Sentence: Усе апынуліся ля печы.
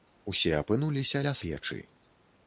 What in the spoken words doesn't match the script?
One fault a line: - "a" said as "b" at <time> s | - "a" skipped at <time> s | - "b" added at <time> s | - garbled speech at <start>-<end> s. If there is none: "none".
none